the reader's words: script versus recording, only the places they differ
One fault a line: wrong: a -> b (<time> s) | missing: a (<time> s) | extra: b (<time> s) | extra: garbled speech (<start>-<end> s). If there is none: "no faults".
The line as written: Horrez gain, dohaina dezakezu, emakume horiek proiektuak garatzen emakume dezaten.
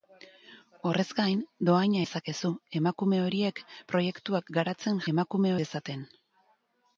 no faults